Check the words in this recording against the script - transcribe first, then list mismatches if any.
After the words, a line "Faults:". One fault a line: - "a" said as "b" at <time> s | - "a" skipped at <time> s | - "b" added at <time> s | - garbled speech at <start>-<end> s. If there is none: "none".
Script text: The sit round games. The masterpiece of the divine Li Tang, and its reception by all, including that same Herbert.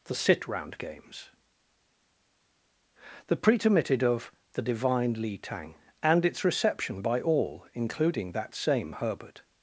The sit round games. The pretermitted of the divine Li Tang, and its reception by all, including that same Herbert.
Faults:
- "masterpiece" said as "pretermitted" at 3.4 s